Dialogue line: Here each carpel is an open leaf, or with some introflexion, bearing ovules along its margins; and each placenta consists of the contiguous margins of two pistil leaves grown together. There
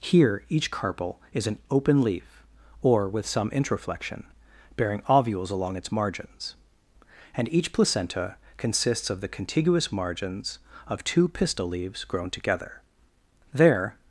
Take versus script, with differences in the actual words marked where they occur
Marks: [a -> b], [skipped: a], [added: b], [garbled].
Here each carpel is an open leaf, or with some introflexion, bearing ovules along its margins; and each placenta consists of the contiguous margins of two pistil leaves grown together. There